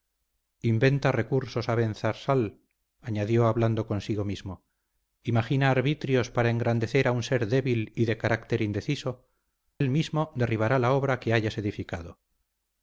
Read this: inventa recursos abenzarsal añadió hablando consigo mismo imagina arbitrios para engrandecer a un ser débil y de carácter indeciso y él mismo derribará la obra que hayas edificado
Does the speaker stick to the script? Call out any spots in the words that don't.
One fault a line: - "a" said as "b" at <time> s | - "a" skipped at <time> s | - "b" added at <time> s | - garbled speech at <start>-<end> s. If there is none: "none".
- "y" skipped at 9.3 s